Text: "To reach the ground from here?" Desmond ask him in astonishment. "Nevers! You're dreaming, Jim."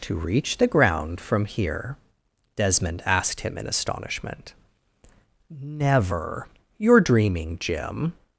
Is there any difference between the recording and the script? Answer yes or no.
yes